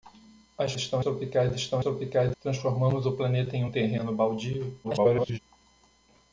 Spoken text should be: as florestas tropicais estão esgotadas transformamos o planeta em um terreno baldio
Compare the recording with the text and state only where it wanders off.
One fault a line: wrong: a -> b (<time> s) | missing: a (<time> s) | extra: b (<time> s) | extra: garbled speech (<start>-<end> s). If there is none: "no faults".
wrong: florestas -> estão (0.8 s)
wrong: esgotadas -> tropicais (1.8 s)
extra: garbled speech (4.8-5.4 s)